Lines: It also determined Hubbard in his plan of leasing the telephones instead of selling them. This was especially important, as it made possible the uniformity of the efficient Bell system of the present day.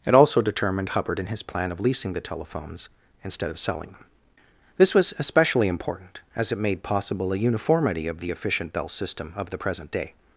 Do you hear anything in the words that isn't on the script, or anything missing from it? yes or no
yes